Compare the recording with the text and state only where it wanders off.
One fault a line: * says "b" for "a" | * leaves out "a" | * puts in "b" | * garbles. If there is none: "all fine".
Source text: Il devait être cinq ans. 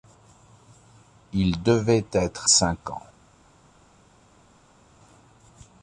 all fine